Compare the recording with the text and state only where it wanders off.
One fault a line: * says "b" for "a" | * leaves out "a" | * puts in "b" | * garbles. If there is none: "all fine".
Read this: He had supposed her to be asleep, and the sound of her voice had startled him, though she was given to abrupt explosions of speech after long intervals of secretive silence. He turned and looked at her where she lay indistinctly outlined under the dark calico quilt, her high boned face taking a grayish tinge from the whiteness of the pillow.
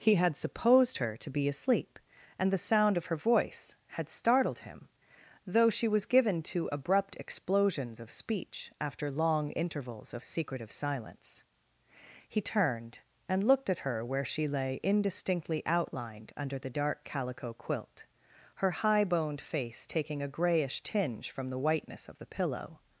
all fine